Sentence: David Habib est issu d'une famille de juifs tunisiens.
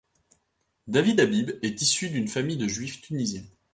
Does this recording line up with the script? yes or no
yes